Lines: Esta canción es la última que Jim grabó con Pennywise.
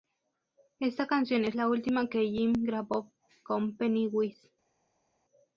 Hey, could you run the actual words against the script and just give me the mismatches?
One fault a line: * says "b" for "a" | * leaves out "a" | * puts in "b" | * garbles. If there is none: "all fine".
all fine